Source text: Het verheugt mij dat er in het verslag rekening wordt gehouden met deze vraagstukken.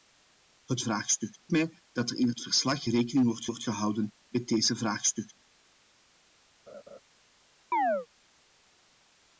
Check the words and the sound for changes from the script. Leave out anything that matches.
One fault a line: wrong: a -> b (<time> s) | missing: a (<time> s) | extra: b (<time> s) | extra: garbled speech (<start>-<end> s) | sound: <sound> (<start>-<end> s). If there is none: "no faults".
wrong: verheugt -> vraagstukken (0.8 s)
extra: wordt (3.4 s)
sound: laugh (6.7-7.0 s)
sound: chirp (7.7-8.1 s)